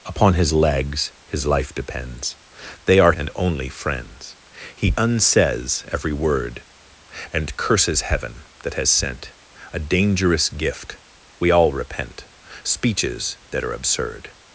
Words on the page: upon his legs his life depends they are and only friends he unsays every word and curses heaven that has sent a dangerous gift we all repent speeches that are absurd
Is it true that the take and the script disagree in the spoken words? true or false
false